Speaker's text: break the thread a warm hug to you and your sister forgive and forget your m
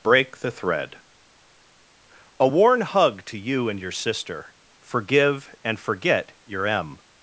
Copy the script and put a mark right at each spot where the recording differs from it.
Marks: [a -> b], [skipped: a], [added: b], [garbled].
break the thread a [warm -> worn] hug to you and your sister forgive and forget your m